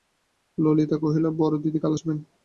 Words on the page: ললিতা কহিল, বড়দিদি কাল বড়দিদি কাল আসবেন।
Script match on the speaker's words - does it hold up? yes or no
no